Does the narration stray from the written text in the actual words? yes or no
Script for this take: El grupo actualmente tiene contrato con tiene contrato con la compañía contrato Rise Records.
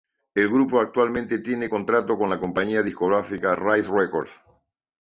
yes